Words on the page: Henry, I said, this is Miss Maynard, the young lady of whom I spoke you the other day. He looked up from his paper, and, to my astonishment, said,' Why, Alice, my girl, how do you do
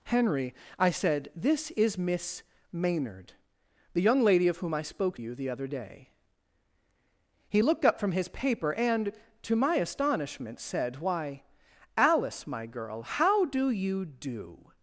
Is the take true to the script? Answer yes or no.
yes